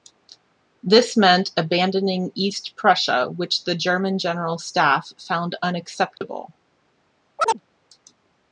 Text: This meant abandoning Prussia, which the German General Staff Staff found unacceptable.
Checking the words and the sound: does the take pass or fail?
fail